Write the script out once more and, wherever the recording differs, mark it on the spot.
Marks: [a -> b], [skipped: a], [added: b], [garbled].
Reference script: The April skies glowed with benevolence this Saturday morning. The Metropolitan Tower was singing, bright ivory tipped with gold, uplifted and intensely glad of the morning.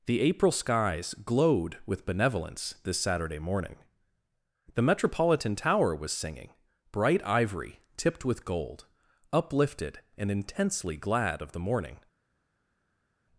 The April skies glowed with benevolence this Saturday morning. The Metropolitan Tower was singing, bright ivory tipped with gold, uplifted and intensely glad of the morning.